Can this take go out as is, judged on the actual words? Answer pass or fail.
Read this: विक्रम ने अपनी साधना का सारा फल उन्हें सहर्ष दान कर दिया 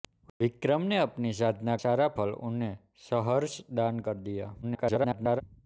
fail